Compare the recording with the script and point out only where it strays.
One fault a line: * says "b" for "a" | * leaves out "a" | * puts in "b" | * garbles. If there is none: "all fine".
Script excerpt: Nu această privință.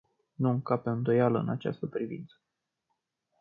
* puts in "încape îndoială în"